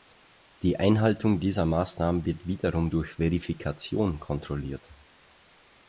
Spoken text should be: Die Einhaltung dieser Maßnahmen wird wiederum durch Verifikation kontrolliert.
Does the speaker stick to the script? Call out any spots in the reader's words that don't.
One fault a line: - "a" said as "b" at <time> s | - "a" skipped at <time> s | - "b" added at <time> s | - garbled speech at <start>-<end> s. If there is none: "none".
none